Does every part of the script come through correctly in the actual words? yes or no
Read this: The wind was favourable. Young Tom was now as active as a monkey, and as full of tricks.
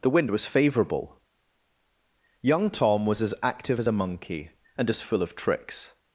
no